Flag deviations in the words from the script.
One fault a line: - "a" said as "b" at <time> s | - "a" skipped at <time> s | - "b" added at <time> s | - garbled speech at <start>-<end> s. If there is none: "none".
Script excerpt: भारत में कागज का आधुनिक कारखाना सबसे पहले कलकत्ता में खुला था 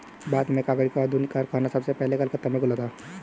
none